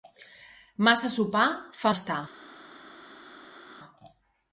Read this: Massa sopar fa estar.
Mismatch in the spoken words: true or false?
false